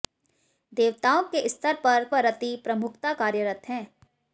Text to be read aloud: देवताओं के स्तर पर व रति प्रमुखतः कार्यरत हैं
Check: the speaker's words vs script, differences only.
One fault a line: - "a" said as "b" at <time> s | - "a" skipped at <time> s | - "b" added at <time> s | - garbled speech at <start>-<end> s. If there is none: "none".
none